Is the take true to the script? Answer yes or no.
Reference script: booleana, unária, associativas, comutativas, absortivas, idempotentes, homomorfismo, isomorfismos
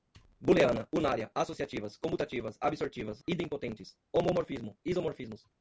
yes